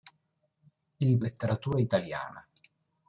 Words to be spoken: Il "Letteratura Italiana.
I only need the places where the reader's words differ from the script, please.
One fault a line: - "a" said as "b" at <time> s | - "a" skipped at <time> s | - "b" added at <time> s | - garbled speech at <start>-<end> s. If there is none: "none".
none